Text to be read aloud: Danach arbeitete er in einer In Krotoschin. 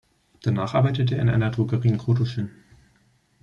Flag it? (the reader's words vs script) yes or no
yes